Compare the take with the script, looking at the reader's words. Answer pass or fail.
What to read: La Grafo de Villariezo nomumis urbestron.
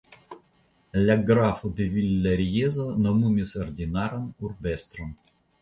fail